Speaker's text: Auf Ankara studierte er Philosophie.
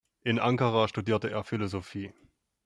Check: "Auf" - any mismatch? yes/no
yes